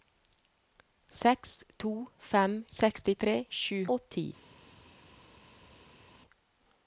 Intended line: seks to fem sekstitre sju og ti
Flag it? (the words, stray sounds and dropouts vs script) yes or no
no